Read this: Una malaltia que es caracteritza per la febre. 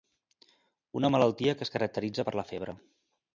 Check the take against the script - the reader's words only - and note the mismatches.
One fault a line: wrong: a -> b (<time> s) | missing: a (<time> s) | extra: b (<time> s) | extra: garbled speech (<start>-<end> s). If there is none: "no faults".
no faults